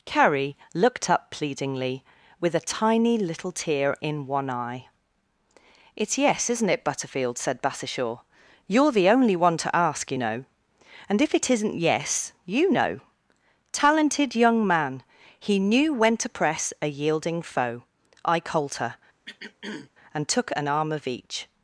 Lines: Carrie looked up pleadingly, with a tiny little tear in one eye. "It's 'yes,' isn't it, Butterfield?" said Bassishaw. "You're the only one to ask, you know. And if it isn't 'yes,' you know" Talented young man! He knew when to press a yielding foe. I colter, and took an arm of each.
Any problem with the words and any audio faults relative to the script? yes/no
yes